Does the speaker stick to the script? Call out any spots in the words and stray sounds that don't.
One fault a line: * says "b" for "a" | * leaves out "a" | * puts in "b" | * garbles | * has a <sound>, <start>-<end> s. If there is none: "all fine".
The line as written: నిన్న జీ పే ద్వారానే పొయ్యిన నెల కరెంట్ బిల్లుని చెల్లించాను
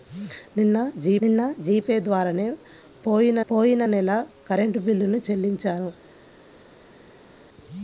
* puts in "నిన్న జీ"
* puts in "పొయ్యిన"